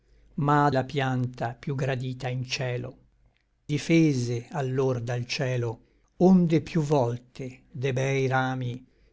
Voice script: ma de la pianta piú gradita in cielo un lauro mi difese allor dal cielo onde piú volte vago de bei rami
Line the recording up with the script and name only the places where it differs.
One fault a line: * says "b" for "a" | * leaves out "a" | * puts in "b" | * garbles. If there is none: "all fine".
* leaves out "de"
* leaves out "un lauro mi"
* leaves out "vago"